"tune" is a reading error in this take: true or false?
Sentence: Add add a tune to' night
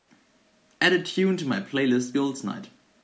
false